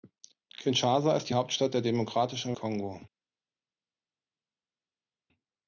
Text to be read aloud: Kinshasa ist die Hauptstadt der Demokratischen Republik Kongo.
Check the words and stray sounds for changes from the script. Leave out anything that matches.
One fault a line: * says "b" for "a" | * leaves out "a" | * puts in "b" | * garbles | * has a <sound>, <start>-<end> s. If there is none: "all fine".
* leaves out "Republik"